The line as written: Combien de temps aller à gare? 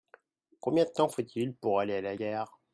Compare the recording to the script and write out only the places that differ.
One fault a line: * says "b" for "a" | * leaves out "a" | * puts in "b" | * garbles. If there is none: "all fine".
* puts in "faut il pour"
* puts in "la"